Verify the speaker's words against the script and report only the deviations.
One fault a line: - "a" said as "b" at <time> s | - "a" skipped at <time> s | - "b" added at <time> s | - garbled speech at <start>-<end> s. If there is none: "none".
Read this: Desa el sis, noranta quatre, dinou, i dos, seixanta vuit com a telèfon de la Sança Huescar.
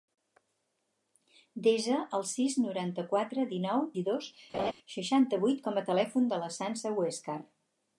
none